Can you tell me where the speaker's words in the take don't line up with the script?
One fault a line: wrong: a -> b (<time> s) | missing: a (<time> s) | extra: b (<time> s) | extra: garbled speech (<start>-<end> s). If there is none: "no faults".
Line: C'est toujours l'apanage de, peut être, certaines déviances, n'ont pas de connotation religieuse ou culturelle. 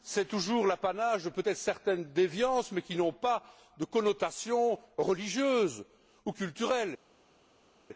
extra: mais qui (2.7 s)